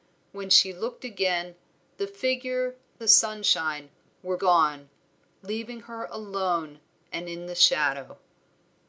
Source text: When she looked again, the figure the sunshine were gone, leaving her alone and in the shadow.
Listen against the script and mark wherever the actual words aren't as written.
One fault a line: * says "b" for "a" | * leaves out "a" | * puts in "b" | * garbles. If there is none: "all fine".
all fine